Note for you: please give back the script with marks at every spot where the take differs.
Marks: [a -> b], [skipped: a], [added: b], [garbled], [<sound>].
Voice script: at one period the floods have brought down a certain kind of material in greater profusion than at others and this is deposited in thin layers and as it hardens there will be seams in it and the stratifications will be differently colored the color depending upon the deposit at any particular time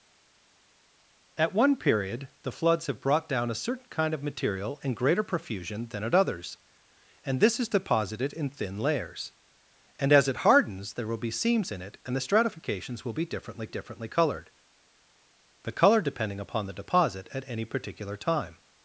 at one period the floods have brought down a certain kind of material in greater profusion than at others and this is deposited in thin layers and as it hardens there will be seams in it and the stratifications will be differently [added: differently] colored the color depending upon the deposit at any particular time